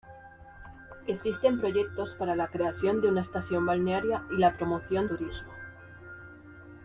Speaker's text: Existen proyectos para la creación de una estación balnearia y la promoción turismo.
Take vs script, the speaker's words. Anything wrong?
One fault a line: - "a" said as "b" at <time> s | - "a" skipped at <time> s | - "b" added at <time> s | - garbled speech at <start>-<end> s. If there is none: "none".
none